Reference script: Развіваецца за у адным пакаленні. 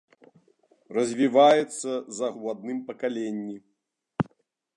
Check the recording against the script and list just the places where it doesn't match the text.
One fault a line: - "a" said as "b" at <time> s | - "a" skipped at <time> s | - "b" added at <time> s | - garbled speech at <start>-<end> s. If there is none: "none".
none